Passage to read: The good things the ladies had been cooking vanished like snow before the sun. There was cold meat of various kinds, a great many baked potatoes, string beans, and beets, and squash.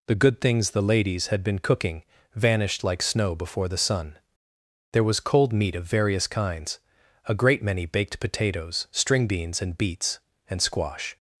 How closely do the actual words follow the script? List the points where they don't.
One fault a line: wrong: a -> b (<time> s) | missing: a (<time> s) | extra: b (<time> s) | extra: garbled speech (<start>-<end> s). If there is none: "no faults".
no faults